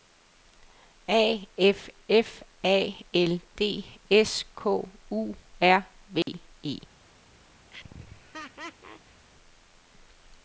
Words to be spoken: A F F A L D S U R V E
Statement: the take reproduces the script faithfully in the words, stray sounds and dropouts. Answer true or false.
false